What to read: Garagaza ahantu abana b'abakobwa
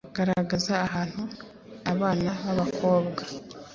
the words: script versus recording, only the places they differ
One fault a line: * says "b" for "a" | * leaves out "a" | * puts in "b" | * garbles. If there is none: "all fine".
all fine